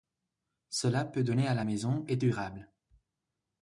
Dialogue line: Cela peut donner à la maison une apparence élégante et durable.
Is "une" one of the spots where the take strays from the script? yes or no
yes